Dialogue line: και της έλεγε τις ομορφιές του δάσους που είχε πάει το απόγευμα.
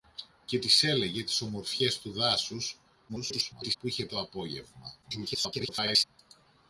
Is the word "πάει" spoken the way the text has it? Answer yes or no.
no